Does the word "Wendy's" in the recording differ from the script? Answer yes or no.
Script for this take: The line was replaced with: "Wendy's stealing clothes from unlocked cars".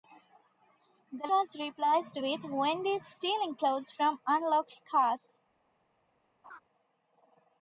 no